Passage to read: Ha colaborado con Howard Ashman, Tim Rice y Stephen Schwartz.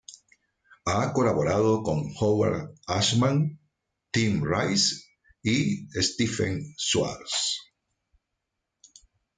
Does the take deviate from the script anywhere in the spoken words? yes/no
no